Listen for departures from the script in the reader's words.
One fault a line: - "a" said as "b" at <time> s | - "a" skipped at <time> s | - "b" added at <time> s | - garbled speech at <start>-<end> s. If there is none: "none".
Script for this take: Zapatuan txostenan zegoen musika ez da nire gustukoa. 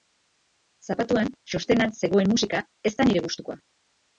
none